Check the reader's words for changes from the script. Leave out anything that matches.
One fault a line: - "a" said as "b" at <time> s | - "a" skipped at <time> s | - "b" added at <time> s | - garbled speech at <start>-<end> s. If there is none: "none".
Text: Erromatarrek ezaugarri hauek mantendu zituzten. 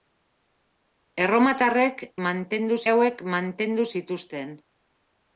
- "ezaugarri" said as "mantendu" at 2.3 s